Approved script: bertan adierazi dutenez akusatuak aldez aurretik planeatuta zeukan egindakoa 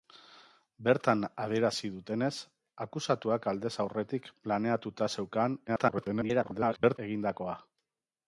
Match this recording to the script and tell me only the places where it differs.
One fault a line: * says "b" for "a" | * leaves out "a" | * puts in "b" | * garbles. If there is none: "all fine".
* garbles